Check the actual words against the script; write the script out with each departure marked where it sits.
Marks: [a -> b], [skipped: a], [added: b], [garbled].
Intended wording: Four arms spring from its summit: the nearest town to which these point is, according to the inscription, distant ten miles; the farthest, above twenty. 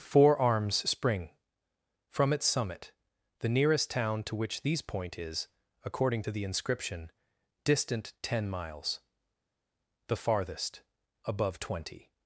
Four arms spring from its summit: the nearest town to which these point is, according to the inscription, distant ten miles; the farthest, above twenty.